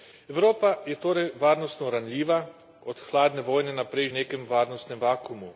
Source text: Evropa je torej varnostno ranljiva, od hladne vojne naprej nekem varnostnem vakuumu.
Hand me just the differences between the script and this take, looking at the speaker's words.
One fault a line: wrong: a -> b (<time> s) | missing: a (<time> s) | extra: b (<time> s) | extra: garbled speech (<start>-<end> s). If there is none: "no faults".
no faults